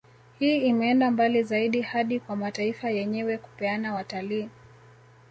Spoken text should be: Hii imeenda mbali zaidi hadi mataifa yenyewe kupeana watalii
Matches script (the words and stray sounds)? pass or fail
fail